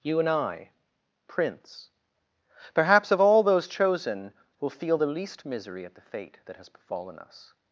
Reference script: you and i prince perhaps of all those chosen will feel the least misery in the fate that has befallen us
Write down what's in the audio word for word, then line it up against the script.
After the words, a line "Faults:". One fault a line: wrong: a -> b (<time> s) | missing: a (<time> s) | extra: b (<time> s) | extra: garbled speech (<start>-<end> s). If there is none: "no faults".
you and i prince perhaps of all those chosen will feel the least misery at the fate that has befallen us
Faults:
wrong: in -> at (5.8 s)